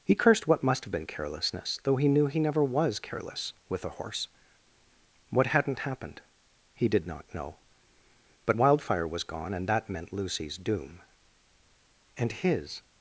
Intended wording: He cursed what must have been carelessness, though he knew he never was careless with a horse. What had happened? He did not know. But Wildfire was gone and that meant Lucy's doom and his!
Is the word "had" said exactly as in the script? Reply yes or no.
no